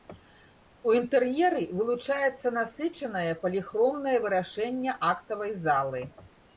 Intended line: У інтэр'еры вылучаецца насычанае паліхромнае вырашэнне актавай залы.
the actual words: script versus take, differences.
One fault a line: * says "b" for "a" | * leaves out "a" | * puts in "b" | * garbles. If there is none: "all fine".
all fine